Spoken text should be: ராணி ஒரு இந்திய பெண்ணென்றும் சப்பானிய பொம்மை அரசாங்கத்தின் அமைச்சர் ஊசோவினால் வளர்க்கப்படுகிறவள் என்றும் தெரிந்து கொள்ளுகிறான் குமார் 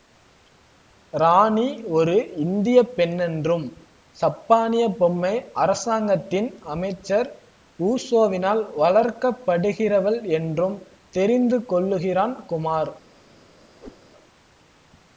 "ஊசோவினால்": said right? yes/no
yes